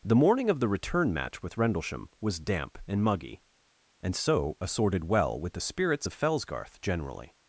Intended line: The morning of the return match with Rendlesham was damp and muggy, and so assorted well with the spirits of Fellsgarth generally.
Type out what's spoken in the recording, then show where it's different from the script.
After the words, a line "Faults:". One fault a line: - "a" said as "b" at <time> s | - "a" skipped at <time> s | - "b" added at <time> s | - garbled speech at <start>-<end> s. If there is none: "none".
The morning of the return match with Rendlesham was damp and muggy, and so assorted well with the spirits of Fellsgarth generally.
Faults:
none